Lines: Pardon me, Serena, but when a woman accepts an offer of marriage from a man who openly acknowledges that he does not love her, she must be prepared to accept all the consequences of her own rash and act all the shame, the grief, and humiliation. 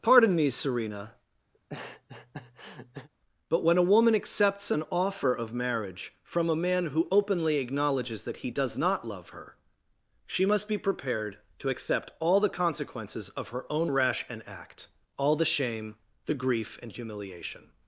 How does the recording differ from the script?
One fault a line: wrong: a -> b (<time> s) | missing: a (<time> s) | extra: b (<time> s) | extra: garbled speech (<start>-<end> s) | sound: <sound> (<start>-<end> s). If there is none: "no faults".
sound: laugh (1.5-3.1 s)